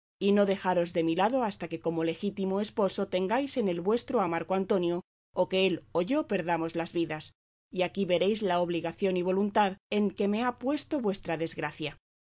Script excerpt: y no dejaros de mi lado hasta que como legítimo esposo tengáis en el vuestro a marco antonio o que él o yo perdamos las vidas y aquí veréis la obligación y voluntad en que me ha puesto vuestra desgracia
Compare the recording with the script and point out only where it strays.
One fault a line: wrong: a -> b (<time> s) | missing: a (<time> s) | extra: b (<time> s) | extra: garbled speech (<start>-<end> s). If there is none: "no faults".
no faults